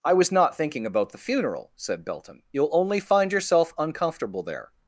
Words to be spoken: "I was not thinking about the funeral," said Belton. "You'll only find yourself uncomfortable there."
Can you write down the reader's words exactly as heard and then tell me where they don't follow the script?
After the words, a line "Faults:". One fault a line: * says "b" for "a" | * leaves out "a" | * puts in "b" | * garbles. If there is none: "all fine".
"I was not thinking about the funeral," said Belton. "You'll only find yourself uncomfortable there."
Faults:
all fine